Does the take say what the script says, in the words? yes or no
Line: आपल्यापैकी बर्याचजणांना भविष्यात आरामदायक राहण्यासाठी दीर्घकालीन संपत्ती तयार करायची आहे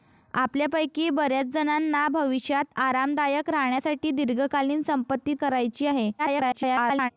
no